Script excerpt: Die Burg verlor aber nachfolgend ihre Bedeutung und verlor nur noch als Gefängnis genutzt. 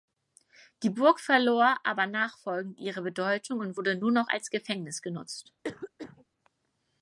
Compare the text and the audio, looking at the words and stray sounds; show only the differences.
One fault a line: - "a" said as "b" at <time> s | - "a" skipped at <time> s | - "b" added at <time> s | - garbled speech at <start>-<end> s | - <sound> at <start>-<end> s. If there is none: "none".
- "verlor" said as "wurde" at 3.8 s
- cough at 5.6-6.3 s